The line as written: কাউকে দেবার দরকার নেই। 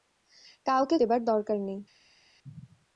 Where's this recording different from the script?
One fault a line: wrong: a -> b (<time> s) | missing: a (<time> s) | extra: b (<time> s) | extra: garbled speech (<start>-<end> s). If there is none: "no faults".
no faults